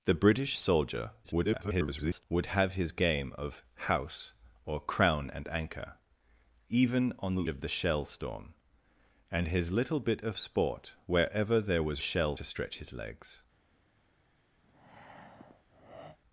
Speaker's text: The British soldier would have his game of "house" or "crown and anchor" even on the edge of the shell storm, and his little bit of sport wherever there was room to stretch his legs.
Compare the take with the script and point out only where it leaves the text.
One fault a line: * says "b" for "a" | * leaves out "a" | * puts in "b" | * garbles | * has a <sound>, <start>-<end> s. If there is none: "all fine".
* garbles
* leaves out "edge"
* says "shell" for "room"
* has a breath, 14.6-16.2 s